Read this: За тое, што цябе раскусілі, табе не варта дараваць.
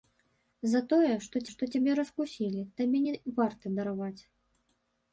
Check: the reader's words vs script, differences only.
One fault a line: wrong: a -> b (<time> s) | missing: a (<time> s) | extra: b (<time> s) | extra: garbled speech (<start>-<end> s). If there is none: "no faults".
extra: што (1.5 s)